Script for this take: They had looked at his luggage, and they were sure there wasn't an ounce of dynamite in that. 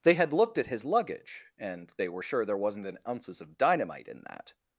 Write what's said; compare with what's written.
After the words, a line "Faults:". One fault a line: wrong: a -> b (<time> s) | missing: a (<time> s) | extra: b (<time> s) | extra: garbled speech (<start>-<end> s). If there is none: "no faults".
They had looked at his luggage, and they were sure there wasn't an ounces of dynamite in that.
Faults:
wrong: ounce -> ounces (3.1 s)